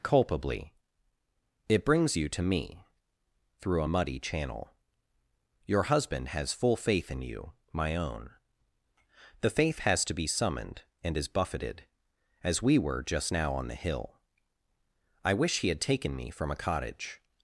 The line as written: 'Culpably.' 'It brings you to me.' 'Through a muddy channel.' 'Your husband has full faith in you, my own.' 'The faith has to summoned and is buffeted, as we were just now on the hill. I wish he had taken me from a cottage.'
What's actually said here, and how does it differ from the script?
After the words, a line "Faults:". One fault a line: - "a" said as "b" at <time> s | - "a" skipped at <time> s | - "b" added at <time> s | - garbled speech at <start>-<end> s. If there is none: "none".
'Culpably.' 'It brings you to me.' 'Through a muddy channel.' 'Your husband has full faith in you, my own.' 'The faith has to be summoned and is buffeted, as we were just now on the hill. I wish he had taken me from a cottage.'
Faults:
- "be" added at 10.1 s